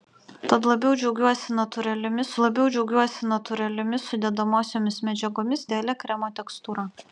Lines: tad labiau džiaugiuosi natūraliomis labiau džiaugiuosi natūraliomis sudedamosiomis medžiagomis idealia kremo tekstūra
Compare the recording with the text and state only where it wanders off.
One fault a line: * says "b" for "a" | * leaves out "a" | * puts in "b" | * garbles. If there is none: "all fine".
all fine